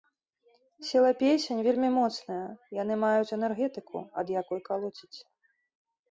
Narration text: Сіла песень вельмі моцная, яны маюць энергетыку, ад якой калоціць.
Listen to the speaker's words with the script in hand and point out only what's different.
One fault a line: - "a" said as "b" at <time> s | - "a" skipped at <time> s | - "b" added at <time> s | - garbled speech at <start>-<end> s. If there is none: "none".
none